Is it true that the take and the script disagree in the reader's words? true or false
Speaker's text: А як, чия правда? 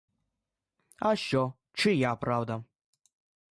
true